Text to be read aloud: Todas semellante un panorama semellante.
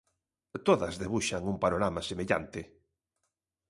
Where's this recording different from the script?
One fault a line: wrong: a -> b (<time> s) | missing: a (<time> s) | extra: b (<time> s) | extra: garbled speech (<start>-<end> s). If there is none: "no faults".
wrong: semellante -> debuxan (1.0 s)